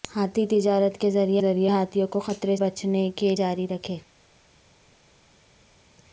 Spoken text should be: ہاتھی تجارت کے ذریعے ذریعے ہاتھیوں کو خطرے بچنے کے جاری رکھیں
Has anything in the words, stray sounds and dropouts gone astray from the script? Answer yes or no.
no